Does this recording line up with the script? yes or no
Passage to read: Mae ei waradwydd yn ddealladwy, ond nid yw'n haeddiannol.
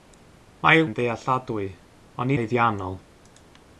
no